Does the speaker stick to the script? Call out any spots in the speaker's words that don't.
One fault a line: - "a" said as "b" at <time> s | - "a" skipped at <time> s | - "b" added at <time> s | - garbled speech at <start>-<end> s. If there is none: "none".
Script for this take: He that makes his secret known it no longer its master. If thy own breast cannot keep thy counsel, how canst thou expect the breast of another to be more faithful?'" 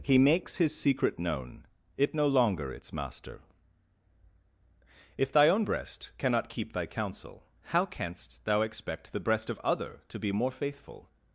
- "that" skipped at 0.2 s
- "another" said as "other" at 9.6 s